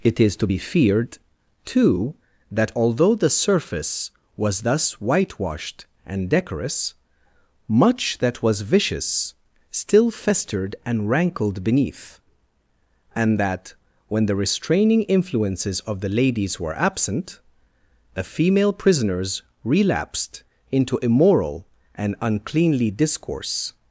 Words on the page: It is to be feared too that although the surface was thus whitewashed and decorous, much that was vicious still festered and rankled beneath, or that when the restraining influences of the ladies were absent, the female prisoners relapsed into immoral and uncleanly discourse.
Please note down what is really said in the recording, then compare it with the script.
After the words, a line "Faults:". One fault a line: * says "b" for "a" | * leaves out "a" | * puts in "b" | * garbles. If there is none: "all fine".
It is to be feared too that although the surface was thus whitewashed and decorous, much that was vicious still festered and rankled beneath, and that when the restraining influences of the ladies were absent, the female prisoners relapsed into immoral and uncleanly discourse.
Faults:
* says "and" for "or"